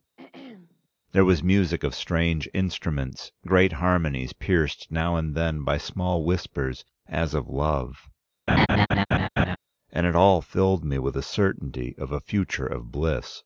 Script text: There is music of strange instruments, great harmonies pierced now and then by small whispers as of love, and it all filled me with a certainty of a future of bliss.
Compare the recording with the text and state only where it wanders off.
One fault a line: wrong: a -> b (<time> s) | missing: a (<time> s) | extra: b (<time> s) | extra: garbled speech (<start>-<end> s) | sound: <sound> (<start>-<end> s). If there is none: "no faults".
sound: throat clearing (0.2-0.9 s)
wrong: is -> was (1.2 s)
sound: laugh (8.5-9.6 s)